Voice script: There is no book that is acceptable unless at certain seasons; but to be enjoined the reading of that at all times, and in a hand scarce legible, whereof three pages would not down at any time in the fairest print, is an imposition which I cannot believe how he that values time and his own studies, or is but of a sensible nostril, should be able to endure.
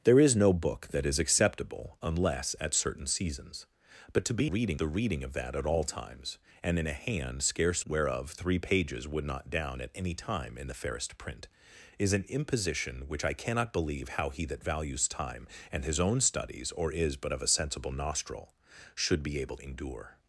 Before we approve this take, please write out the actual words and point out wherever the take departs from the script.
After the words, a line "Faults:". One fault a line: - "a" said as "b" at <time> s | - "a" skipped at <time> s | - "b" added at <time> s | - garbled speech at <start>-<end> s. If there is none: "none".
There is no book that is acceptable unless at certain seasons; but to be reading the reading of that at all times, and in a hand scarce whereof three pages would not down at any time in the fairest print, is an imposition which I cannot believe how he that values time and his own studies, or is but of a sensible nostril, should be able endure.
Faults:
- "enjoined" said as "reading" at 4.4 s
- "legible" skipped at 7.8 s
- "to" skipped at 19.6 s